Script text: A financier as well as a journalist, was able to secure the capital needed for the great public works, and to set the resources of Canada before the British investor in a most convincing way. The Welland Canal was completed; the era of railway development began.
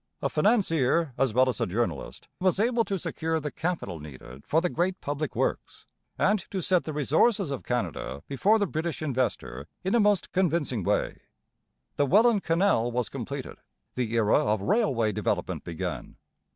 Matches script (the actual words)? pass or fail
pass